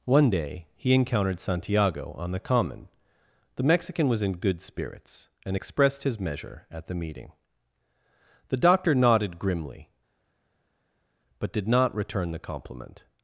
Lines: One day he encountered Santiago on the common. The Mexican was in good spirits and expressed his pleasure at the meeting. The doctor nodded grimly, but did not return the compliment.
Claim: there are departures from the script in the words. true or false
true